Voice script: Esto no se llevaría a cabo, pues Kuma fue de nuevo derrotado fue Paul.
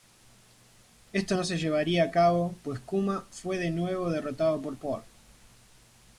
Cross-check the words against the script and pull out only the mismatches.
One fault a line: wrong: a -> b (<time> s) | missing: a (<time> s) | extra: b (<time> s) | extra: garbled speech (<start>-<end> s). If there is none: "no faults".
wrong: fue -> por (4.6 s)